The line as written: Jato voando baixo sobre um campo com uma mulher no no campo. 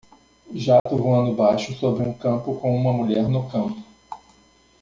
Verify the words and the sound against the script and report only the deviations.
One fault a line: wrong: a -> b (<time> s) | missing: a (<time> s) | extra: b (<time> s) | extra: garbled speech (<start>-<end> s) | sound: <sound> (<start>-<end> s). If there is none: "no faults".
sound: dropout (0.8-0.9 s)
missing: no (3.5 s)